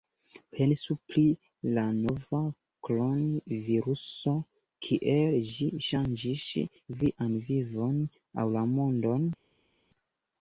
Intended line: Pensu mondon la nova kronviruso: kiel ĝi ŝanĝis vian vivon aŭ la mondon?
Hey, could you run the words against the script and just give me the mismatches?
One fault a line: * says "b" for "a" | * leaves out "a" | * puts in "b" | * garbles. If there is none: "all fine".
* says "pri" for "mondon"